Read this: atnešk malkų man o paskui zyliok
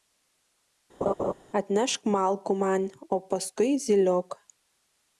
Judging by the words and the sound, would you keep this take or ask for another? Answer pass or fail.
fail